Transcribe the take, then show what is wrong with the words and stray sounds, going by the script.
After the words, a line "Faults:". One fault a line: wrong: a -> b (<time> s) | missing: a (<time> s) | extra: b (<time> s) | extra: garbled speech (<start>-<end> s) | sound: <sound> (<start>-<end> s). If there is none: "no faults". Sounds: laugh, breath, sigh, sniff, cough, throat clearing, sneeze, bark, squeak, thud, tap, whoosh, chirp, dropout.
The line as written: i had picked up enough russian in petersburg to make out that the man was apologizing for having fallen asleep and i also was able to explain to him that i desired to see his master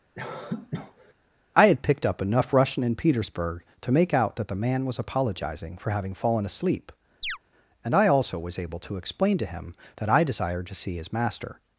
i had picked up enough russian in petersburg to make out that the man was apologizing for having fallen asleep and i also was able to explain to him that i desired to see his master
Faults:
sound: cough (0.1-1.1 s)
sound: chirp (7.2-7.4 s)